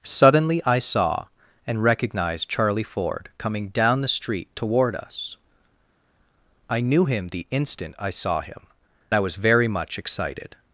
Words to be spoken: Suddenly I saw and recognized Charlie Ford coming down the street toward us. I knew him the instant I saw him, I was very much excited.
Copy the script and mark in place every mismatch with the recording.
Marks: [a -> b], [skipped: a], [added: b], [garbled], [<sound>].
Suddenly I saw and recognized Charlie Ford coming down the street toward us. I knew him the instant I saw him, I was very much excited.